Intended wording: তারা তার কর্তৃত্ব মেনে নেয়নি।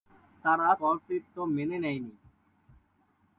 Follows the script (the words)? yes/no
no